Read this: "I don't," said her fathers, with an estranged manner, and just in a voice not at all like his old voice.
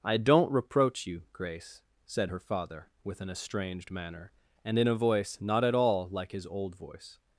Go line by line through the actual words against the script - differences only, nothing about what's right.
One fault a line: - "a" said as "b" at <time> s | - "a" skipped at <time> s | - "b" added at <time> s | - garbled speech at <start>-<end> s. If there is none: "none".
- "reproach you Grace" added at 0.5 s
- "fathers" said as "father" at 2.4 s
- "just" skipped at 4.8 s